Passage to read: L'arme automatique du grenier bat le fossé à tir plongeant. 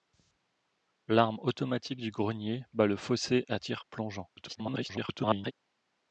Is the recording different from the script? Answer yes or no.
yes